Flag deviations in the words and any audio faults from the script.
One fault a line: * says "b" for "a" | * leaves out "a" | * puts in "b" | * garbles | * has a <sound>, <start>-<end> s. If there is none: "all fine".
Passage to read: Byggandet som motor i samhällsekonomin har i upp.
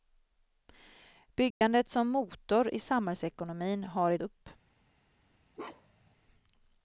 * has a dropout, 1.5-1.6 s
* has a bark, 5.5-6.1 s